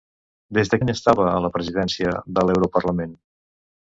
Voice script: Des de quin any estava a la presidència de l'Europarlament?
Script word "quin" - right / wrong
wrong